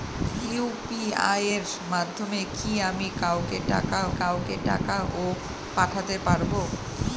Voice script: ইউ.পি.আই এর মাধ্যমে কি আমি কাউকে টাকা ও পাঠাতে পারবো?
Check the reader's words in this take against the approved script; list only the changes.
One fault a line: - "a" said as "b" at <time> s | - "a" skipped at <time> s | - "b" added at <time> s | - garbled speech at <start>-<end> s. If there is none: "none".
- "কাউকে টাকা" added at 4.2 s